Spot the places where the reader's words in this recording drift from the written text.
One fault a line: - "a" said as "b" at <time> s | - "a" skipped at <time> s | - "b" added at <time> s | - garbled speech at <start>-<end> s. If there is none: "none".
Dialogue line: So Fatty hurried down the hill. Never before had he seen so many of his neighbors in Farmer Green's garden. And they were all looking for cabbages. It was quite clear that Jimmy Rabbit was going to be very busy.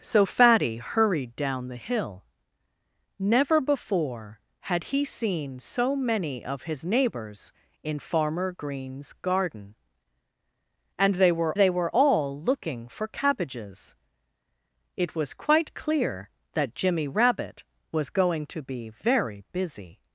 - "they were" added at 11.5 s